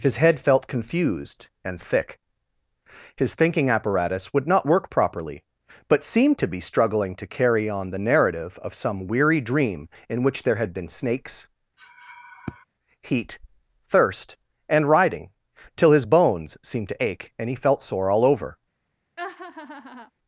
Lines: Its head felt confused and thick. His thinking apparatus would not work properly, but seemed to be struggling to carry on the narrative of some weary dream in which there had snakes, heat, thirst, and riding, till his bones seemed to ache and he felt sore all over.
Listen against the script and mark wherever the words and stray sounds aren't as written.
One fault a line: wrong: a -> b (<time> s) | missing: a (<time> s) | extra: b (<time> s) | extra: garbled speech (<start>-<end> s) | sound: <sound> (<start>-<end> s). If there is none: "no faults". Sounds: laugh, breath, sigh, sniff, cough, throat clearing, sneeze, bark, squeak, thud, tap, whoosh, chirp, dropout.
wrong: Its -> His (0.0 s)
extra: been (10.7 s)
sound: sniff (11.8-12.6 s)
sound: laugh (19.2-20.1 s)